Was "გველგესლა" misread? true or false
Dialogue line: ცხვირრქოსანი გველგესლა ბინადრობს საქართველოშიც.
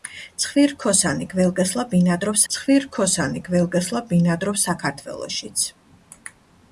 false